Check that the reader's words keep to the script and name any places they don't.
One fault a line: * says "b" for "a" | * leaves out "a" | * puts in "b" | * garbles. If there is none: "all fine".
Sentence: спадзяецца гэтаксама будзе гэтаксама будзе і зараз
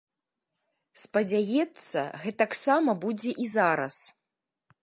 * leaves out "гэтаксама будзе"